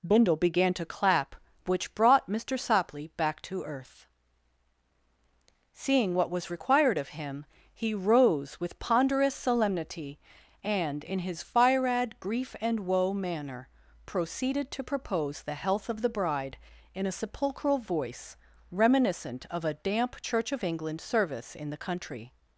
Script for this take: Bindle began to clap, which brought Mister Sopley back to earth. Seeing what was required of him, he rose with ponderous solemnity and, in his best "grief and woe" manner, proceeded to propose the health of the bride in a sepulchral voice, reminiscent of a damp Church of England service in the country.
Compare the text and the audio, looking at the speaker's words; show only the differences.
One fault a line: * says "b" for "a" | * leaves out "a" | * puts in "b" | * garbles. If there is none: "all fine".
* says "firad" for "best"